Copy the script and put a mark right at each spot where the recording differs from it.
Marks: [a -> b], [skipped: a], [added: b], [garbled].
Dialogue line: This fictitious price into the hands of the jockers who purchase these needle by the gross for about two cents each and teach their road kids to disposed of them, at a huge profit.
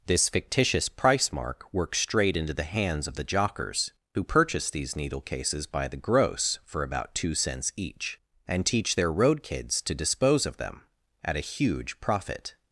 This fictitious price [added: mark works straight] into the hands of the jockers who purchase these needle [added: cases] by the gross for about two cents each and teach their road kids to [disposed -> dispose] of them, at a huge profit.